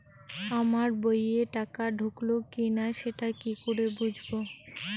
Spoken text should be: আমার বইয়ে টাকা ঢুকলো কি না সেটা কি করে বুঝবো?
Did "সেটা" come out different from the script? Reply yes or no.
no